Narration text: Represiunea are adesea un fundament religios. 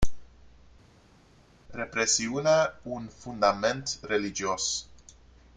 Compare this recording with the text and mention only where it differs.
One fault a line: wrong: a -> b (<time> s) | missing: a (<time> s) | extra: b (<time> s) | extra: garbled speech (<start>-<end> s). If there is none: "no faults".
missing: are adesea (2.8 s)